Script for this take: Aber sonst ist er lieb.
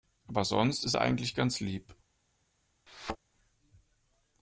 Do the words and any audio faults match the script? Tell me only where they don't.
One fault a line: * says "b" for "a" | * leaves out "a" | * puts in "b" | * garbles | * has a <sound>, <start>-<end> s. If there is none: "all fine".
* puts in "eigentlich ganz"
* has a thud, 2.9-3.2 s